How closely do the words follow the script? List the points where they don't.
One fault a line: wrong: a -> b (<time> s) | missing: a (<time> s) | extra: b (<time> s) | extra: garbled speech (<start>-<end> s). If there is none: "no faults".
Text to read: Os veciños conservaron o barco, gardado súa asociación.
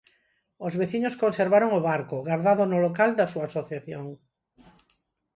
extra: no local da (2.7 s)